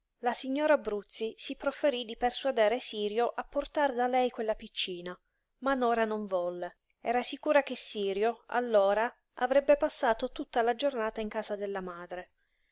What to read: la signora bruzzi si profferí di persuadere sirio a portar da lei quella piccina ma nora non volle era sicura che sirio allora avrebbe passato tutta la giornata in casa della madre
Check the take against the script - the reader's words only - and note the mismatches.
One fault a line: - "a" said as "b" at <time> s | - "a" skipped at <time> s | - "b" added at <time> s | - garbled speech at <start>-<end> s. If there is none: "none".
none